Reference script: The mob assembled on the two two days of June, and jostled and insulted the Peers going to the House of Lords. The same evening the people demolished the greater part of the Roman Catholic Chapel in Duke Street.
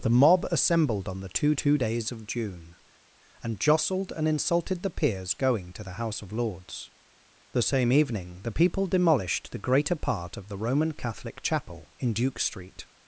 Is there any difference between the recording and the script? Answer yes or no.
no